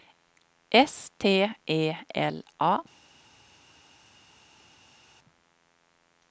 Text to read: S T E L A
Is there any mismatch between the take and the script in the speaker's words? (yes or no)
no